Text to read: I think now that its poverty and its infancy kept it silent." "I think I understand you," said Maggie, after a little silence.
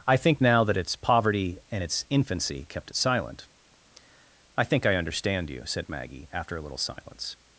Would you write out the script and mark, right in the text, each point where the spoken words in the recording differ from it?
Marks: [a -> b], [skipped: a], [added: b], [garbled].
I think now that its poverty and its infancy kept it silent." "I think I understand you," said Maggie, after a little silence.